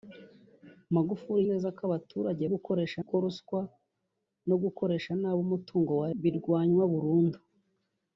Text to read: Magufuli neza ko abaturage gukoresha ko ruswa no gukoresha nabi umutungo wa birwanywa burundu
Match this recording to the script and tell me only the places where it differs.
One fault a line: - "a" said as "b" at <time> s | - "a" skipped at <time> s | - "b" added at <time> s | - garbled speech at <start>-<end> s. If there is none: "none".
none